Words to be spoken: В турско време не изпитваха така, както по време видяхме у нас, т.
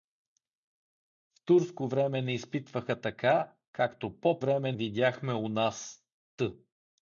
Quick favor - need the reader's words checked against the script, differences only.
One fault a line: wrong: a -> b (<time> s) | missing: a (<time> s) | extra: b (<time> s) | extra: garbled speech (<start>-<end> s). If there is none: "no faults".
no faults